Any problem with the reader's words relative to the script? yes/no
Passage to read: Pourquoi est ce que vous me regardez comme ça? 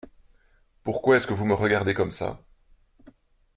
no